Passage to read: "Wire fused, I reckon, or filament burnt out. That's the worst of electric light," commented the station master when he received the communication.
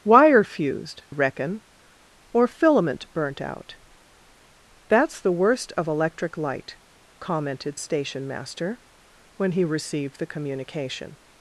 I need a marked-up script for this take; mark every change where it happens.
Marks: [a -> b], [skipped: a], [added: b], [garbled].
"Wire fused, [skipped: I] reckon, or filament burnt out. That's the worst of electric light," commented [skipped: the] station master when he received the communication.